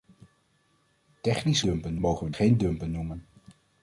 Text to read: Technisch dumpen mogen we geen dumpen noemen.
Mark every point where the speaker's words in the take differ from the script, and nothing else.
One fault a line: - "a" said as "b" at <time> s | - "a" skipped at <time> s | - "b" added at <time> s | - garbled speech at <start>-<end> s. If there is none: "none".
none